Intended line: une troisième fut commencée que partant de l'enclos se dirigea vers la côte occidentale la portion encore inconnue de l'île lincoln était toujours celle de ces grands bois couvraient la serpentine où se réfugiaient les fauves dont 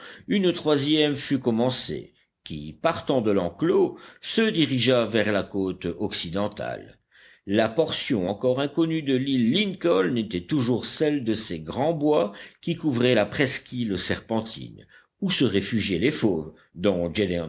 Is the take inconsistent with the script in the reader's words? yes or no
yes